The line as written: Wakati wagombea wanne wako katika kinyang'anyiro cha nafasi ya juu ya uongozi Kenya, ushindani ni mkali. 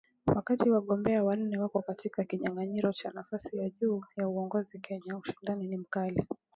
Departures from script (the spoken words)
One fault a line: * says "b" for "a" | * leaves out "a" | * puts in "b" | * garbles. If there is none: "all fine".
all fine